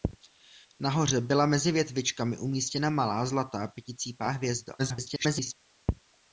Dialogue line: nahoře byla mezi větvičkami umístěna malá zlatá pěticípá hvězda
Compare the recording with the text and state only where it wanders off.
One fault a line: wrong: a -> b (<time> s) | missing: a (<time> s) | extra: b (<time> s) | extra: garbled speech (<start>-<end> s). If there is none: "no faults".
extra: garbled speech (4.8-5.5 s)